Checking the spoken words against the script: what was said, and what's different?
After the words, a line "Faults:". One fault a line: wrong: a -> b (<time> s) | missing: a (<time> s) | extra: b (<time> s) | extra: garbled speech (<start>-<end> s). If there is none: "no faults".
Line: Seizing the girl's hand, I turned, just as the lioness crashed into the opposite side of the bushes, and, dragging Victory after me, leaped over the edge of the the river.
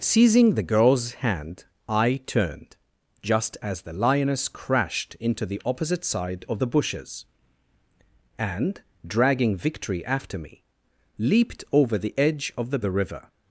Seizing the girl's hand, I turned, just as the lioness crashed into the opposite side of the bushes, and, dragging Victory after me, leaped over the edge of the the river.
Faults:
no faults